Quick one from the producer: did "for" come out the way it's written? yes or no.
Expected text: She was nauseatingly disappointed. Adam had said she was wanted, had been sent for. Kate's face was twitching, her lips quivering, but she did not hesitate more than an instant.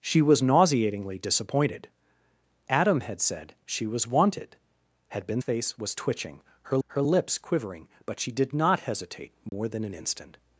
no